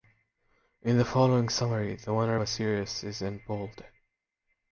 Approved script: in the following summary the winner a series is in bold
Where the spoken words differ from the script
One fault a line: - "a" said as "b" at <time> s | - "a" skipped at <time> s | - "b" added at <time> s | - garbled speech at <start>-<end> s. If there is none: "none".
none